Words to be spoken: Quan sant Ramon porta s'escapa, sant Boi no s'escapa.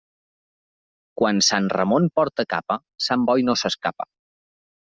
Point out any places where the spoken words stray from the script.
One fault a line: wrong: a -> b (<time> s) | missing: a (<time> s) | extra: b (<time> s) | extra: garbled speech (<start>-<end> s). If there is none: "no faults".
wrong: s'escapa -> capa (2.6 s)